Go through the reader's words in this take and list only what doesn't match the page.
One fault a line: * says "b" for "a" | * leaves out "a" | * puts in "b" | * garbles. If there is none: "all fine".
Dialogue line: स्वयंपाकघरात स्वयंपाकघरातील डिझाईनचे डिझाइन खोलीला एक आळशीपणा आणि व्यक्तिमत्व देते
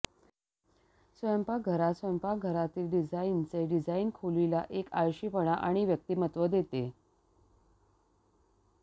all fine